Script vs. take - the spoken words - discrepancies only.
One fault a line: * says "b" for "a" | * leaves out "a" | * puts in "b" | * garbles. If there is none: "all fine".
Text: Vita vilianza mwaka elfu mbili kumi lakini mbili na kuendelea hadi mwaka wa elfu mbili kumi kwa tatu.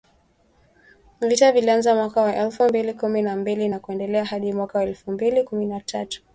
* puts in "wa"
* says "na" for "lakini"
* says "na" for "kwa"